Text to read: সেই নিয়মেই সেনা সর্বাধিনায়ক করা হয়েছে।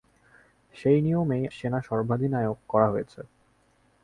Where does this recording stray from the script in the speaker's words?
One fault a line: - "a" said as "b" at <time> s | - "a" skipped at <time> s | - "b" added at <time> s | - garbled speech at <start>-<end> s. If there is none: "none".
none